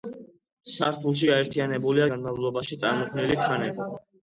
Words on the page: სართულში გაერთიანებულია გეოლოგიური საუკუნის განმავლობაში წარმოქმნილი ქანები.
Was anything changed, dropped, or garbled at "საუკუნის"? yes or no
yes